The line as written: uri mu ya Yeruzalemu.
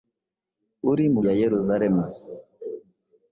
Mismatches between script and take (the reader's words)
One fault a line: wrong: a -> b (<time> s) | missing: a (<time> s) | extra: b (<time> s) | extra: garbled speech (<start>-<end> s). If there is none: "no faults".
no faults